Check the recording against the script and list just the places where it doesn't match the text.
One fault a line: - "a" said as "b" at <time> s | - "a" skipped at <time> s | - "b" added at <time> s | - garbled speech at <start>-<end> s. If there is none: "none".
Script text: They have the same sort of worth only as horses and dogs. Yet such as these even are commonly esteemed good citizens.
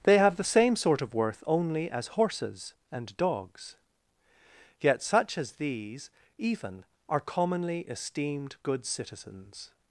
none